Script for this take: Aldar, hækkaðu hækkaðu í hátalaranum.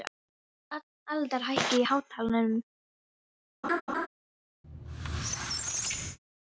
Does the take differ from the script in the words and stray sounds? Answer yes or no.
yes